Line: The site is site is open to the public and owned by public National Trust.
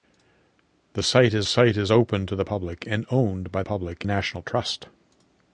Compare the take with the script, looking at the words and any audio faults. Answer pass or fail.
pass